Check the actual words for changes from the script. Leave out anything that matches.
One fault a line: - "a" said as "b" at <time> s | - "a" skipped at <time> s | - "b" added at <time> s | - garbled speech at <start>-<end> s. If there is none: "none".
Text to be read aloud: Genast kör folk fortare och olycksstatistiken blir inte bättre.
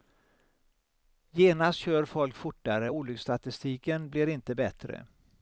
none